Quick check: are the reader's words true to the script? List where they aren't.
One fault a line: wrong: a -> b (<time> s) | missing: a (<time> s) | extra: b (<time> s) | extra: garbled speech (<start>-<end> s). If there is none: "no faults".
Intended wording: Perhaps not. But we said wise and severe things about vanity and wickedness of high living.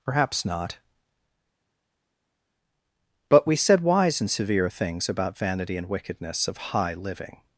no faults